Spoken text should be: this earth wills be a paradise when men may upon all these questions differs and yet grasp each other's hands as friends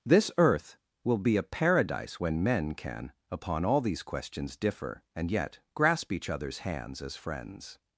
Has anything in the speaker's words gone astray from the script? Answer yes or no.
yes